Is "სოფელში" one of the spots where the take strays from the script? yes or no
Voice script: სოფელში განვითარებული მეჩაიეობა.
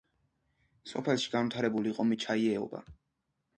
no